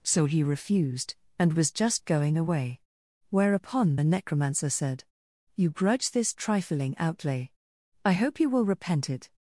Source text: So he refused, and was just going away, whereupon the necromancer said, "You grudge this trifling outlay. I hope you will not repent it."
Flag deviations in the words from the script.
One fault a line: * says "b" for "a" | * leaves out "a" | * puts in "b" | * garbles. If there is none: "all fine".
* leaves out "not"